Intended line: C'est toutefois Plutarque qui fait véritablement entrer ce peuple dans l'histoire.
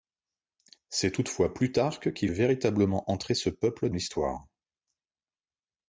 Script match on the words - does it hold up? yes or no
no